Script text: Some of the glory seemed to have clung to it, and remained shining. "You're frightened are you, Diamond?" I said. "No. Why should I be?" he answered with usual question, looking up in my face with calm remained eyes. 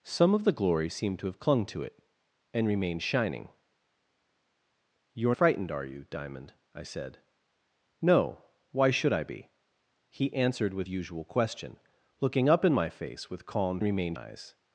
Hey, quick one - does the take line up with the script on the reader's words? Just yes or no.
yes